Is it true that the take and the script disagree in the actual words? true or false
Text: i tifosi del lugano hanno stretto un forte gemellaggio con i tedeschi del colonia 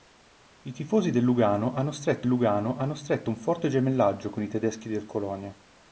true